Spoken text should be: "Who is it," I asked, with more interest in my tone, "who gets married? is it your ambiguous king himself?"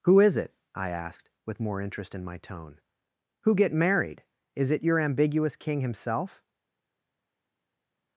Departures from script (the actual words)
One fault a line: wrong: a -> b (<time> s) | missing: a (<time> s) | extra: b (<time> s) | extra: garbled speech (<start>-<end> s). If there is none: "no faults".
wrong: gets -> get (3.5 s)